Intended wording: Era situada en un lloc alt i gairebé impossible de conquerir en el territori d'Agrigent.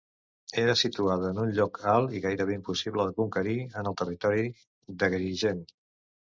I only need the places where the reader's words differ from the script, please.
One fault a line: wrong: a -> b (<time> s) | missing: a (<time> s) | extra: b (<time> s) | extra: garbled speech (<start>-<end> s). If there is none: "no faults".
no faults